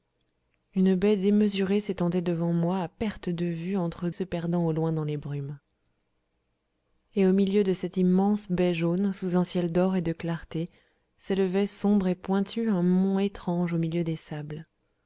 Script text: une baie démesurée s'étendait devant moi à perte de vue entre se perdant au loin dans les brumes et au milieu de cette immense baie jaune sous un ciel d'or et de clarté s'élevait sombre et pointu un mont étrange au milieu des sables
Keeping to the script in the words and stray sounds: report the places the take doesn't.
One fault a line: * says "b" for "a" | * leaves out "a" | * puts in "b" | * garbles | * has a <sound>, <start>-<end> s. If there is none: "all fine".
all fine